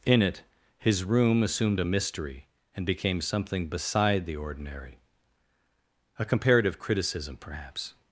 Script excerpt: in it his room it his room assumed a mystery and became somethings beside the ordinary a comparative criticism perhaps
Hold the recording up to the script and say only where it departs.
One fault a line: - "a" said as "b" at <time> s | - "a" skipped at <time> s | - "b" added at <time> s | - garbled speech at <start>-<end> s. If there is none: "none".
- "it his room" skipped at 1.4 s
- "somethings" said as "something" at 3.2 s